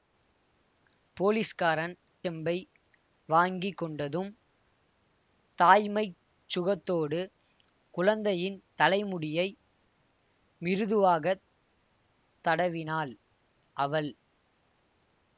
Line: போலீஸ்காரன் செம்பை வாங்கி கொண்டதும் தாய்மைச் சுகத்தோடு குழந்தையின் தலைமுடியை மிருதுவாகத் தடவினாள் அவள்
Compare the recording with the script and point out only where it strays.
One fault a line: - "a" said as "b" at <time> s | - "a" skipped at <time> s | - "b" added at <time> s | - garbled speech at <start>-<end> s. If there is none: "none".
none